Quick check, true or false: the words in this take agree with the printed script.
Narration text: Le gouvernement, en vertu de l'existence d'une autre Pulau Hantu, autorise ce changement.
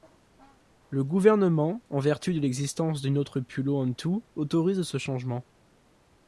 true